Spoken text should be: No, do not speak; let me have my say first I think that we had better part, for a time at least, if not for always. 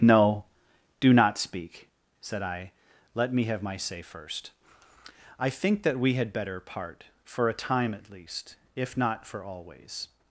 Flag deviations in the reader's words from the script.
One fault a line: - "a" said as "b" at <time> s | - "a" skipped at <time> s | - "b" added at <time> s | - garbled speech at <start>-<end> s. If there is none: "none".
- "said I" added at 2.2 s